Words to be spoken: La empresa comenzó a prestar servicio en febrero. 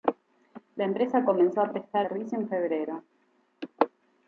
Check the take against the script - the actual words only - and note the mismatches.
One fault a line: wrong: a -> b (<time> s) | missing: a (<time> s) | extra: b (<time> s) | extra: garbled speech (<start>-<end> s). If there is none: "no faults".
no faults